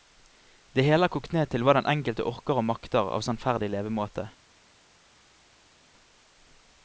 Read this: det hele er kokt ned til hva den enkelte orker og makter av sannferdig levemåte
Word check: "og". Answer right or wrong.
right